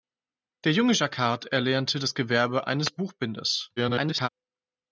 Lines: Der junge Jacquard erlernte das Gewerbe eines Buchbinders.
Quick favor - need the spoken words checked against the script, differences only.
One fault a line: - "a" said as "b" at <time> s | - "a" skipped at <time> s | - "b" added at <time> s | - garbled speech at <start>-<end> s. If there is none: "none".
- garbled speech at 3.8-4.3 s